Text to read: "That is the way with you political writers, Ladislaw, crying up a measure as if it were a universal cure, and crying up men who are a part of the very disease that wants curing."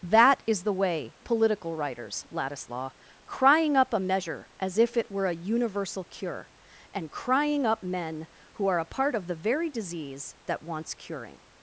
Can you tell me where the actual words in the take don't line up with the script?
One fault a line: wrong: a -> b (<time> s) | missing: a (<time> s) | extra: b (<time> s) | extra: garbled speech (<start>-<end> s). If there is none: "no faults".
missing: with you (1.1 s)